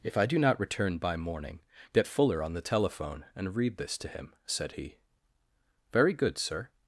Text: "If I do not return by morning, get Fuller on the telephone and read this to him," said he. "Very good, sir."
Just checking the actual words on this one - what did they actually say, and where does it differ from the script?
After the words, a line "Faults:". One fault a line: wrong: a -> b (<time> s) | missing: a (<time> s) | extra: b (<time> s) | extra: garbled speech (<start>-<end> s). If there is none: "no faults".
"If I do not return by morning, get Fuller on the telephone and read this to him," said he. "Very good, sir."
Faults:
no faults